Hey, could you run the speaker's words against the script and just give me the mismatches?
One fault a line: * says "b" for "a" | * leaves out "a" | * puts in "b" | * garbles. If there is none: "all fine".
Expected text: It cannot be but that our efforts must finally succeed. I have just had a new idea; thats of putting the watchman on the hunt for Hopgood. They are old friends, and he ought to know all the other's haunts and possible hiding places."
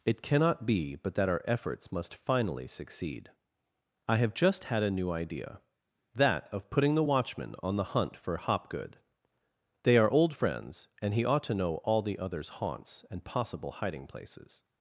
* says "that" for "thats"